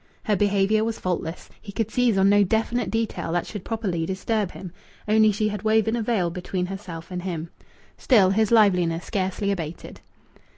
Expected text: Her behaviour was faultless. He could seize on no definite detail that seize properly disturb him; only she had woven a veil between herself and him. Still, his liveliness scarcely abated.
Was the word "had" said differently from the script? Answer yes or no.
no